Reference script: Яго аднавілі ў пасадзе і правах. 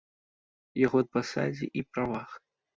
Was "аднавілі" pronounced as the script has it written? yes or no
no